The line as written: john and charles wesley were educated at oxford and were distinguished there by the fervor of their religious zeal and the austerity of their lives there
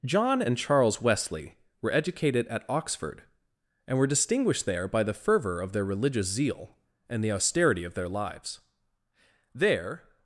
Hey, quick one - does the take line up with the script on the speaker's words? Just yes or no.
yes